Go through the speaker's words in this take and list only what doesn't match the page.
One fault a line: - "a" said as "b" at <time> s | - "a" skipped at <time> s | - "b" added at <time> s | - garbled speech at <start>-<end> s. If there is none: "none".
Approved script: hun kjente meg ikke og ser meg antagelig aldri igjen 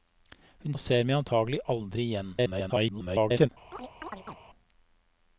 - "kjente meg ikke" skipped at 0.8 s
- garbled speech at 2.4-3.5 s